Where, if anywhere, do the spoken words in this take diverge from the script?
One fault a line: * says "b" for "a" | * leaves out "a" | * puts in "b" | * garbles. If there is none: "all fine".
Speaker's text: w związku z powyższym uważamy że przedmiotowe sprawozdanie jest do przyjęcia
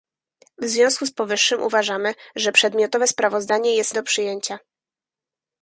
all fine